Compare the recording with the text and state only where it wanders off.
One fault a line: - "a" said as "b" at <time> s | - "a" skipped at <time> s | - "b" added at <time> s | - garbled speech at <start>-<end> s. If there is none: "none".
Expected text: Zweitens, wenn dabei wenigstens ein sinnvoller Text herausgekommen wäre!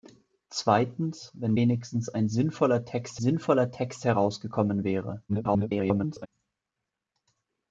- "dabei" skipped at 1.6 s
- "sinnvoller Text" added at 3.2 s
- garbled speech at 5.3-6.3 s